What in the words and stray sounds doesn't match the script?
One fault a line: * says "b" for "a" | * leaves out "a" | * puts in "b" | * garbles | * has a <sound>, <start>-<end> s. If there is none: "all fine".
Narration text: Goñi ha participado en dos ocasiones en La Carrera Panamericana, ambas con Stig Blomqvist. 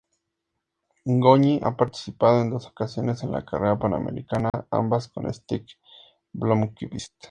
* has a dropout, 4.5-4.5 s